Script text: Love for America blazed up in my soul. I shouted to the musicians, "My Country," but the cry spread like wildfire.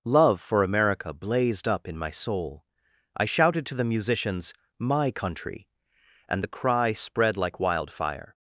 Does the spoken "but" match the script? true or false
false